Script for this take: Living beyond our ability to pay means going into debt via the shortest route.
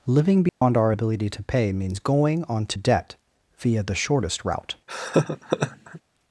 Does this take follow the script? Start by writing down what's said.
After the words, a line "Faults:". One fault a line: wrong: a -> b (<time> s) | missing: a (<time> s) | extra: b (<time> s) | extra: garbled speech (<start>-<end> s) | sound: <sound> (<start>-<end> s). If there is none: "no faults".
Living beyond our ability to pay means going onto debt via the shortest route.
Faults:
sound: dropout (0.5-0.6 s)
wrong: into -> onto (2.5 s)
sound: laugh (4.9-6.0 s)